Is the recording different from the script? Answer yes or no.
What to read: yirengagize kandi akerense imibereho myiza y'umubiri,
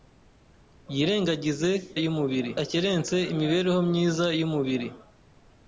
yes